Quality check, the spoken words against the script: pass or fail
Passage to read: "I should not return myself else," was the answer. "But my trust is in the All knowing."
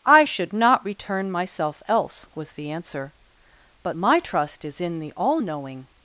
pass